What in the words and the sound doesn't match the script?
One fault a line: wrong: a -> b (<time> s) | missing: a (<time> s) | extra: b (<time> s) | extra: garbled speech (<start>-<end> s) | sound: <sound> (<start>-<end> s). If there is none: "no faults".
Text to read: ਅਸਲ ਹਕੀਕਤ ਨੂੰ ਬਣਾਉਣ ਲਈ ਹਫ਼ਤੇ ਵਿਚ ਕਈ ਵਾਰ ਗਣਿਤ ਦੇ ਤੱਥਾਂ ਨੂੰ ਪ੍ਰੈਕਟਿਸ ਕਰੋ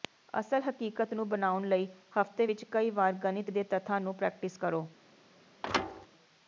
sound: thud (5.6-6.1 s)